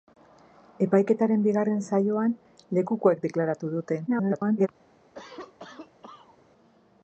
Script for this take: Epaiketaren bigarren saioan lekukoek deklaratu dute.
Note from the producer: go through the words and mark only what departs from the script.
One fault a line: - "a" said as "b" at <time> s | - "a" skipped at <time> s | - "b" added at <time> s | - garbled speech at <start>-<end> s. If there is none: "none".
- garbled speech at 4.1-4.7 s